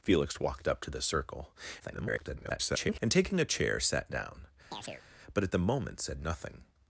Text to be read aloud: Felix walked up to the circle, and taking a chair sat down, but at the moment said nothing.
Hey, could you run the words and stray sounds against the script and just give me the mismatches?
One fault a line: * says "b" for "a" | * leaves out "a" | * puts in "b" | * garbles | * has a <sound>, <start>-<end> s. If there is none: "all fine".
* garbles
* has a chirp, 4.7-5.0 s